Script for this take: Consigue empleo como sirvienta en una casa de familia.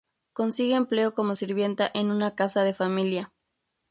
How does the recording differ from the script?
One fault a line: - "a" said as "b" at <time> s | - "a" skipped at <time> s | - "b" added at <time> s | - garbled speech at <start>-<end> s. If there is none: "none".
none